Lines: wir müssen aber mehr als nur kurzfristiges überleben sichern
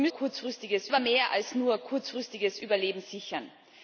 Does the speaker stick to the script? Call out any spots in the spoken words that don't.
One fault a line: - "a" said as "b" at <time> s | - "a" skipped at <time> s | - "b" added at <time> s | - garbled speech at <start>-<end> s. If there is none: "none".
- "müssen" said as "kurzfristiges" at 0.1 s